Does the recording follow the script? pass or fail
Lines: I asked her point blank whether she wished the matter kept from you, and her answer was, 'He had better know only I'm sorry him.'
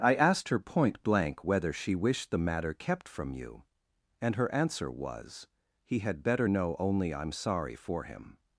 fail